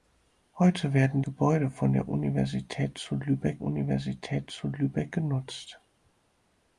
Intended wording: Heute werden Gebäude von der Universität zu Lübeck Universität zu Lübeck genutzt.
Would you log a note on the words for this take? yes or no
no